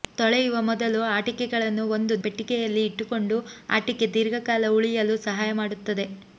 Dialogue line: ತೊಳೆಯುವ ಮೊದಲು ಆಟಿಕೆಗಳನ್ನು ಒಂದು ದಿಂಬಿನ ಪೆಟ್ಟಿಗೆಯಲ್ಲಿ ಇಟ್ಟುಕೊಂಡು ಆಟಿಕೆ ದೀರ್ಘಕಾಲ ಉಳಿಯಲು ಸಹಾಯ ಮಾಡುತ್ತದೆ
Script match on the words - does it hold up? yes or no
no